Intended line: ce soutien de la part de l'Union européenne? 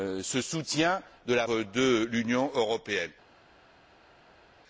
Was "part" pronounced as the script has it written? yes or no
no